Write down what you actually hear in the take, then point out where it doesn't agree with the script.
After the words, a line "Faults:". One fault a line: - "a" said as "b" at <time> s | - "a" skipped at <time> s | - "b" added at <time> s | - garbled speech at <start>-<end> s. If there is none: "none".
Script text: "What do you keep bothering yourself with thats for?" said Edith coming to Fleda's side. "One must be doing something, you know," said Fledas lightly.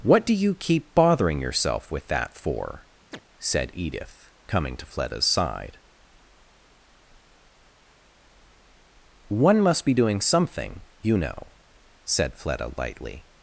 "What do you keep bothering yourself with that for?" said Edith coming to Fleda's side. "One must be doing something, you know," said Fleda lightly.
Faults:
- "thats" said as "that" at 2.1 s
- "Fledas" said as "Fleda" at 12.3 s